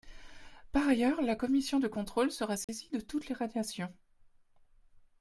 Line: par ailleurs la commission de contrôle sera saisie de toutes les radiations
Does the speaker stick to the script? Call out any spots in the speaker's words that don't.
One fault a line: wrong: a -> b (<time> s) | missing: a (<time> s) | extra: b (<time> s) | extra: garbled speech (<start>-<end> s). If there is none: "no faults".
no faults